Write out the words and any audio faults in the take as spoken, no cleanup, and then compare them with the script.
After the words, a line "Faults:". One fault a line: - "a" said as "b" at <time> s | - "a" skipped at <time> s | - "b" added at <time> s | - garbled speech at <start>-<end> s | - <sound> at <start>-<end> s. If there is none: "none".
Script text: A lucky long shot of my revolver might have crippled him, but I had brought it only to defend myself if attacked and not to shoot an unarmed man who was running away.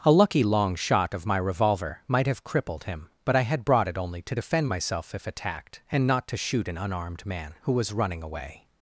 A lucky long shot of my revolver might have crippled him, but I had brought it only to defend myself if attacked and not to shoot an unarmed man who was running away.
Faults:
none